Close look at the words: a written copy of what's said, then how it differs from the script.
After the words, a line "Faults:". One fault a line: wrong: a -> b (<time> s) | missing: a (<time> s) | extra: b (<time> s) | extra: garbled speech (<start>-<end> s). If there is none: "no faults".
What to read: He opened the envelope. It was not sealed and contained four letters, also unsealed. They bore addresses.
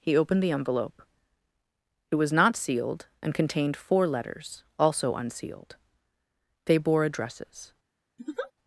He opened the envelope. It was not sealed and contained four letters, also unsealed. They bore addresses.
Faults:
no faults